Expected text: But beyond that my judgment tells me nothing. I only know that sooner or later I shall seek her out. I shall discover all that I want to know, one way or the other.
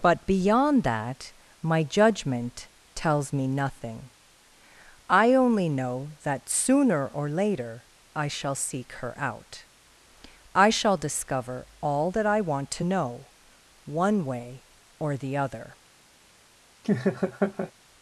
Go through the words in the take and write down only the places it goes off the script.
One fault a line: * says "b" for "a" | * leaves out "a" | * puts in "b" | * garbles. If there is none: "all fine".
all fine